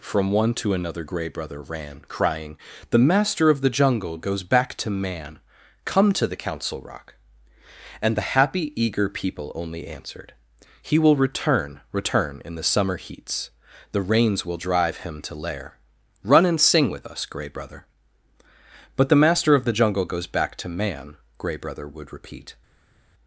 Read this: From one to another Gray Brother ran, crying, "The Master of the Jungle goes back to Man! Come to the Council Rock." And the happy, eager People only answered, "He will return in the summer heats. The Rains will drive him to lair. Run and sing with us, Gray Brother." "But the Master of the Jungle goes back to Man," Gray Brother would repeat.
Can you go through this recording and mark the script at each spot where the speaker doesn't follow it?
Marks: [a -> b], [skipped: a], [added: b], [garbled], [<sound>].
From one to another Gray Brother ran, crying, "The Master of the Jungle goes back to Man! Come to the Council Rock." And the happy, eager People only answered, "He will return [added: return] in the summer heats. The Rains will drive him to lair. Run and sing with us, Gray Brother." "But the Master of the Jungle goes back to Man," Gray Brother would repeat.